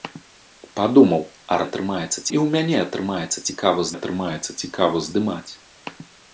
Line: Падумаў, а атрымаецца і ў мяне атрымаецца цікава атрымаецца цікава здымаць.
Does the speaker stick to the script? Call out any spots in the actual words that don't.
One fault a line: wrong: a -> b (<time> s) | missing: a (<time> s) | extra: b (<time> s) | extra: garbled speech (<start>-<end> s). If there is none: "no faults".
no faults